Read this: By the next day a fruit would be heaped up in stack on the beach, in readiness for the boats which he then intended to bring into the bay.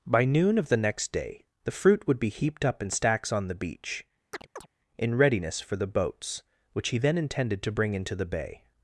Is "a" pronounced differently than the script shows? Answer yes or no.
yes